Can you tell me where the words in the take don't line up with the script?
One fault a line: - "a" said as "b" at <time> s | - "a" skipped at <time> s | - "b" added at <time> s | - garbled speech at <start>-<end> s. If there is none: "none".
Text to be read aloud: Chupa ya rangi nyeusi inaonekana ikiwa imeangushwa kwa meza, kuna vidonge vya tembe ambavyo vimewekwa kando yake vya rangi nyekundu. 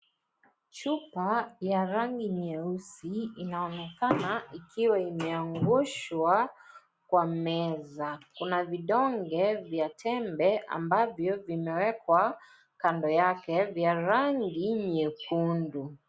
none